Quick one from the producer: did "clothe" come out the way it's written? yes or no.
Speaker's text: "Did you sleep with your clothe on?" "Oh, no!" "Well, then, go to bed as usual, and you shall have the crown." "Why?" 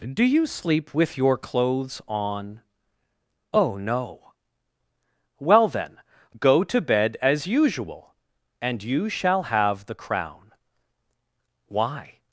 no